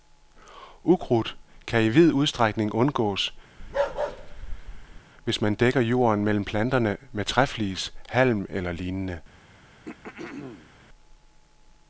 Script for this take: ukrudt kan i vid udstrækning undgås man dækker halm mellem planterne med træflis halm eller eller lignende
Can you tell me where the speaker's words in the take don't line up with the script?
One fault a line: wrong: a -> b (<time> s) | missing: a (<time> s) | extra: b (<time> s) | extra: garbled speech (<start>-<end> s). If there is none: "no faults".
extra: hvis (5.2 s)
wrong: halm -> jorden (5.8 s)
missing: eller (8.7 s)